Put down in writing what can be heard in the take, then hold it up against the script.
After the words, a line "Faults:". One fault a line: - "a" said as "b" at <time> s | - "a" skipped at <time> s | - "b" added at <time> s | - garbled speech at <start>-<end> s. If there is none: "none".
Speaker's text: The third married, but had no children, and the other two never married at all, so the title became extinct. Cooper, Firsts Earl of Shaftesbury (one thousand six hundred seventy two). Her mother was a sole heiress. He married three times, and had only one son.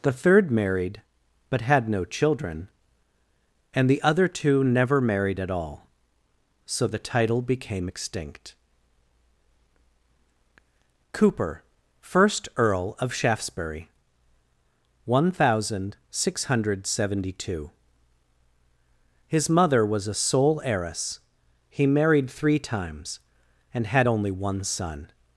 The third married, but had no children, and the other two never married at all, so the title became extinct. Cooper, First Earl of Shaftesbury (one thousand six hundred seventy two). His mother was a sole heiress. He married three times, and had only one son.
Faults:
- "Firsts" said as "First" at 12.0 s
- "Her" said as "His" at 19.3 s